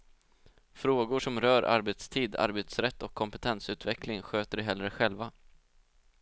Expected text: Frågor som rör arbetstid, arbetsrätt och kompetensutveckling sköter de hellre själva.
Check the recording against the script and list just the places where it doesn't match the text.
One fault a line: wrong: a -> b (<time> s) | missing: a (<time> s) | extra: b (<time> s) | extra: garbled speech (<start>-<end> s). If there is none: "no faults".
no faults